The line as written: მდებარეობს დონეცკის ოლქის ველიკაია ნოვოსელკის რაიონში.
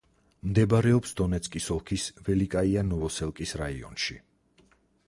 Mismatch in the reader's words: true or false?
false